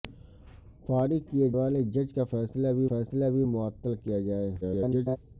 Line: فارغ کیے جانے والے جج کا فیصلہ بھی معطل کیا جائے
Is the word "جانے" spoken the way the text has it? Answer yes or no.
no